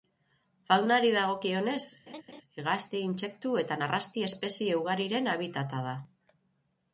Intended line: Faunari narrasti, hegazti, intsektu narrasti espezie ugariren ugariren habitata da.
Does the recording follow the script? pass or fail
fail